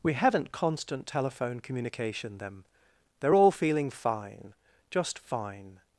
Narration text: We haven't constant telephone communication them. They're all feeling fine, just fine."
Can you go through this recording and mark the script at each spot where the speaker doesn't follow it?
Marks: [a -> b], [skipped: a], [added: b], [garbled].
We haven't constant telephone communication them. They're all feeling fine, just fine."